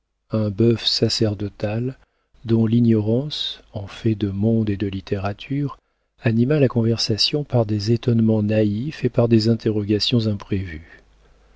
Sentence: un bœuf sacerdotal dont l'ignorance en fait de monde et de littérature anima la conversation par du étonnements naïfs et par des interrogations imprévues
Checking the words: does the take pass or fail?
fail